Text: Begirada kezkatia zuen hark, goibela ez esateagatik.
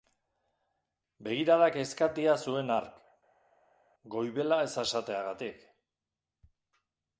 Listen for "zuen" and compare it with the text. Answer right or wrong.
right